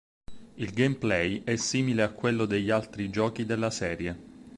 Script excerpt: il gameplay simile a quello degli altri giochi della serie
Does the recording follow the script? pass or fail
fail